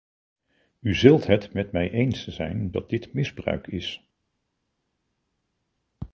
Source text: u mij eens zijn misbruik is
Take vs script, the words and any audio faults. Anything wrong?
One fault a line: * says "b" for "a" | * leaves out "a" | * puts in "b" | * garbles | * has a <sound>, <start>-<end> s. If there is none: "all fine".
* puts in "zult het met"
* puts in "dat dit"